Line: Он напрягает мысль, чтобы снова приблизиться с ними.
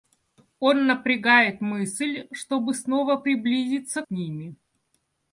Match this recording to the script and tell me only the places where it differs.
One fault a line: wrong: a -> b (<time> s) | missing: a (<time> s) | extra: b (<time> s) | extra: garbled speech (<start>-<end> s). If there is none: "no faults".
no faults